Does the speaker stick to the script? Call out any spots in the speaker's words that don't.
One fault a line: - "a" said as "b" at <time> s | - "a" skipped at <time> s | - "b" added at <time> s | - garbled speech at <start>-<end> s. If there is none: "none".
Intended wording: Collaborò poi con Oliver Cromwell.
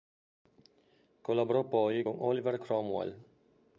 none